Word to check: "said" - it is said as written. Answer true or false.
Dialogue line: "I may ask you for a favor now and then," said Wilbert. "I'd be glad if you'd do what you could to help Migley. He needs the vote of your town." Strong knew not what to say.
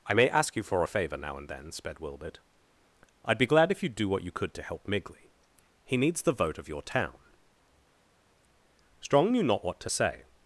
false